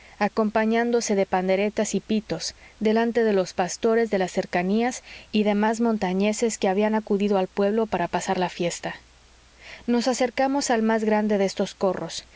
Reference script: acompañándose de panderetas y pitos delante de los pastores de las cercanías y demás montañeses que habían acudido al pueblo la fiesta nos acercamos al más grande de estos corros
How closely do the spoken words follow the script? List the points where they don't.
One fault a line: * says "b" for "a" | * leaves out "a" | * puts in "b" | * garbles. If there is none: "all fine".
* puts in "para pasar"